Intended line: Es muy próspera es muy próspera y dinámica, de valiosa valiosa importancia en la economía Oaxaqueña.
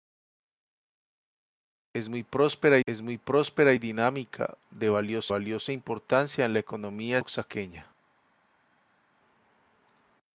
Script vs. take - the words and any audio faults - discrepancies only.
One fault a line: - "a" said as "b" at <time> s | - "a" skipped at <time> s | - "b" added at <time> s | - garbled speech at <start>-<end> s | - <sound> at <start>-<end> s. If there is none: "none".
none